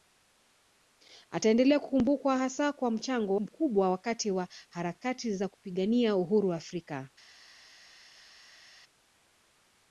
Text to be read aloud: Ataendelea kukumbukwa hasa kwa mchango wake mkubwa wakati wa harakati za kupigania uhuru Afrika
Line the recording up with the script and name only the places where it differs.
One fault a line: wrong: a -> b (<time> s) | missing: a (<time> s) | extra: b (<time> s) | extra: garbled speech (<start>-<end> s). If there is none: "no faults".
missing: wake (3.4 s)